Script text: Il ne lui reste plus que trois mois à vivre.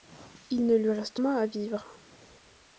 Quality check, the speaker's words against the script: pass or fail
fail